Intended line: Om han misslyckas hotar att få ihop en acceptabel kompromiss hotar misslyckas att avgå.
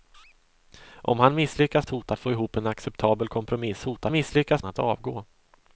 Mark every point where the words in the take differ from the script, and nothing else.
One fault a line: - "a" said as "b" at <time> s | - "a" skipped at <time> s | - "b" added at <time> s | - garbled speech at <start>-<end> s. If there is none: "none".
none